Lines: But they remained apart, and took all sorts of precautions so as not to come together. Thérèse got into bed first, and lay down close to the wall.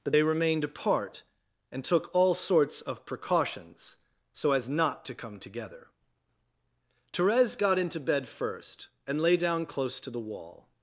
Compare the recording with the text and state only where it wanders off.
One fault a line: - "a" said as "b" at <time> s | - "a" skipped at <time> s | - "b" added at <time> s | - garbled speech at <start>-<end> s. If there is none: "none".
none